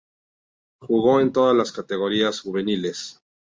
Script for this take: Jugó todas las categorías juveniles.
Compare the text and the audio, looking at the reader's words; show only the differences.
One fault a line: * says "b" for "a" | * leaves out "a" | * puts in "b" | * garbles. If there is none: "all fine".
* puts in "en"